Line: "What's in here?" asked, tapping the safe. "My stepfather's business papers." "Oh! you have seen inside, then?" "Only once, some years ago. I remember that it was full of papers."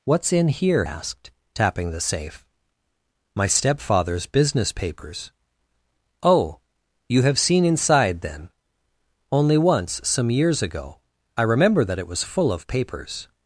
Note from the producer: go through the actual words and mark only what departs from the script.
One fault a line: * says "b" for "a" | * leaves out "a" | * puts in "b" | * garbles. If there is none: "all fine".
all fine